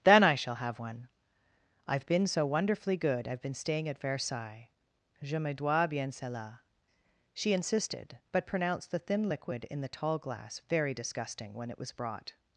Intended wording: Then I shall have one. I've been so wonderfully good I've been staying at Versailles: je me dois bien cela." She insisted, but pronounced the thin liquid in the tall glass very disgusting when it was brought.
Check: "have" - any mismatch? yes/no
no